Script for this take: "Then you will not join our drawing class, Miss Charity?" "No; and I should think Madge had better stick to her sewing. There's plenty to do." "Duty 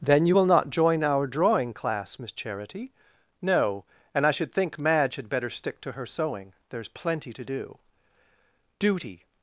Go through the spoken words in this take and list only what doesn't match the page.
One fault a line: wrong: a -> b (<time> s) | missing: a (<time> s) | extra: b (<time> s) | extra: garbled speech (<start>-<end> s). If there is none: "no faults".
no faults